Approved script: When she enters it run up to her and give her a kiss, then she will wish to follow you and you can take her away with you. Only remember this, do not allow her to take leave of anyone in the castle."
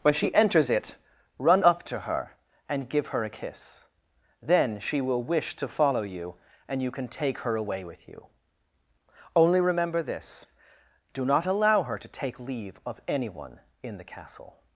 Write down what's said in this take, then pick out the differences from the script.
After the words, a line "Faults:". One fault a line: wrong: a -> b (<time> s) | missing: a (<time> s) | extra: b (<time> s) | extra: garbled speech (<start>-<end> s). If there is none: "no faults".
When she enters it run up to her and give her a kiss, then she will wish to follow you and you can take her away with you. Only remember this, do not allow her to take leave of anyone in the castle."
Faults:
no faults